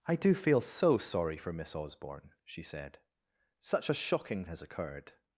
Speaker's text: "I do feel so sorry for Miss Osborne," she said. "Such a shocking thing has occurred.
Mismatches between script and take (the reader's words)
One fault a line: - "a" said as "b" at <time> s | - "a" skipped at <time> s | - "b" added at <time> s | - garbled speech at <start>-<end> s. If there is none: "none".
- "thing" skipped at 4.5 s